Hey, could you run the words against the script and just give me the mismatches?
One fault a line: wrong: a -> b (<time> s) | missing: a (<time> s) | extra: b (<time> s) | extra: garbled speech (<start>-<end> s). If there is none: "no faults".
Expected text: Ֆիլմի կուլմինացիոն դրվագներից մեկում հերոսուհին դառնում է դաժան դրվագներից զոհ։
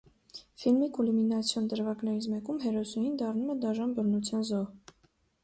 wrong: դրվագներից -> բռնության (4.0 s)